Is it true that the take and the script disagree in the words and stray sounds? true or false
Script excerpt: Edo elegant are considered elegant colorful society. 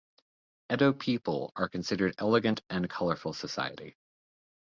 true